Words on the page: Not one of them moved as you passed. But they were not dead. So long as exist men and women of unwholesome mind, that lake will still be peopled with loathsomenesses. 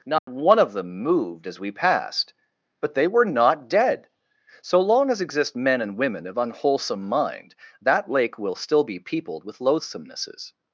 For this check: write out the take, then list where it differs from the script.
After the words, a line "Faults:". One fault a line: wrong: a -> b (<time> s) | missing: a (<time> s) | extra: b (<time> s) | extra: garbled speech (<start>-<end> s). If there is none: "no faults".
Not one of them moved as we passed. But they were not dead. So long as exist men and women of unwholesome mind, that lake will still be peopled with loathsomenesses.
Faults:
wrong: you -> we (1.6 s)